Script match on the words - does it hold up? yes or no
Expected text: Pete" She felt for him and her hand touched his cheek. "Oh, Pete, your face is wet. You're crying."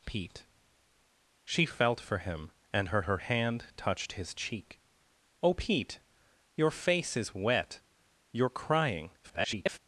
no